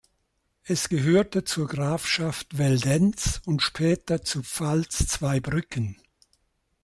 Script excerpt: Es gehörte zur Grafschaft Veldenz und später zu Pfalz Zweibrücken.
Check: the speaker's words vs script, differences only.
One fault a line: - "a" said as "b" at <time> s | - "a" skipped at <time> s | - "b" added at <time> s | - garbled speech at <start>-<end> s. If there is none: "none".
none